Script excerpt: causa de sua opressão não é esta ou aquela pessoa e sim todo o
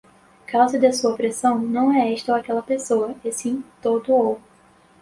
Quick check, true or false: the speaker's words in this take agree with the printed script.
true